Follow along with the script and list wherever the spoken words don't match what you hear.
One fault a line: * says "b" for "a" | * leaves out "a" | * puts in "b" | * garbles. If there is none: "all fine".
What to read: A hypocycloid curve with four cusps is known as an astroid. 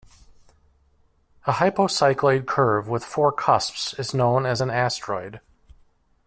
all fine